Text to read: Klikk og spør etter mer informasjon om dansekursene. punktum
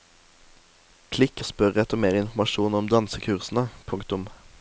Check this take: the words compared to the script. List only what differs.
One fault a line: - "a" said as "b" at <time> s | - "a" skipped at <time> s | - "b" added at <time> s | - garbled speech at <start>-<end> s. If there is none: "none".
none